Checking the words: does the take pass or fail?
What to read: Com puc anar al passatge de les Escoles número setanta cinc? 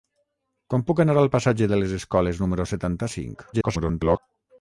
fail